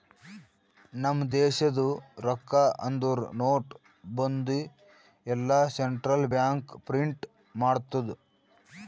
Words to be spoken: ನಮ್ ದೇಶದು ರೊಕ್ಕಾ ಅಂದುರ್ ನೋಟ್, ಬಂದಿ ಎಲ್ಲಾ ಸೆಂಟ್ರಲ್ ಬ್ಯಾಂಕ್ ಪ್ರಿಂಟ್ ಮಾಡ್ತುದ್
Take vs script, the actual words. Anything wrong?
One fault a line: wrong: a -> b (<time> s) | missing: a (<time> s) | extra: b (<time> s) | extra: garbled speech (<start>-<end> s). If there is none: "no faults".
no faults